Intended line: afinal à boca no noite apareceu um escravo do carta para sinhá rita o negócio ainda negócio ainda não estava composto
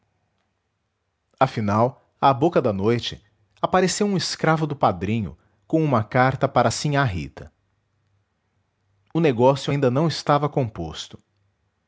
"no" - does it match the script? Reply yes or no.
no